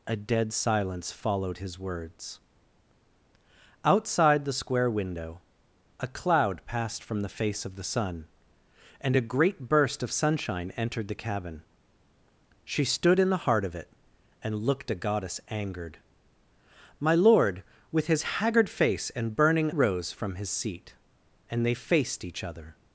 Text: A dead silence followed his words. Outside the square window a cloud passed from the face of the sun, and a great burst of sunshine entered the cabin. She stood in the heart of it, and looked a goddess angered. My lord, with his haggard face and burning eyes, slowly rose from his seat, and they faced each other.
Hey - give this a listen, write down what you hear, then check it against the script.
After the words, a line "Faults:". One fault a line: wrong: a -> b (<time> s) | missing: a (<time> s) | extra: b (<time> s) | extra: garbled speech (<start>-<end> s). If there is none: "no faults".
A dead silence followed his words. Outside the square window a cloud passed from the face of the sun, and a great burst of sunshine entered the cabin. She stood in the heart of it, and looked a goddess angered. My lord, with his haggard face and burning rose from his seat, and they faced each other.
Faults:
missing: eyes slowly (19.7 s)